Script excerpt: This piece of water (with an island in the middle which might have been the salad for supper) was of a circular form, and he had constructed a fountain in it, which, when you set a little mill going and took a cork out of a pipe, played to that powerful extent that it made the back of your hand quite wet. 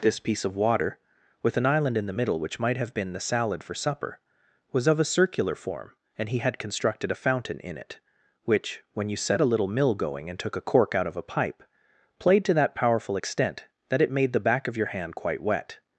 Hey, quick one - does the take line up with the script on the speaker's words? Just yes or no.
yes